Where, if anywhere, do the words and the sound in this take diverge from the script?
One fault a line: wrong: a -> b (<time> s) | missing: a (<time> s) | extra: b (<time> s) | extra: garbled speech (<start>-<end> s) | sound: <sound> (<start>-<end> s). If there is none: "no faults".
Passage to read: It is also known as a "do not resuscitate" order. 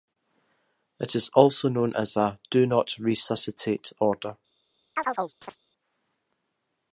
sound: chirp (5.0-5.6 s)